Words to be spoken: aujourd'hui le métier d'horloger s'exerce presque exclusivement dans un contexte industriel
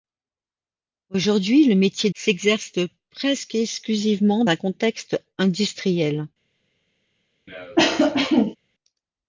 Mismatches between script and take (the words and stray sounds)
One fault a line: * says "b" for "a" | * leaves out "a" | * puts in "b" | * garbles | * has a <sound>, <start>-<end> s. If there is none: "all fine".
* leaves out "d'horloger"
* leaves out "dans"
* has a cough, 7.5-8.6 s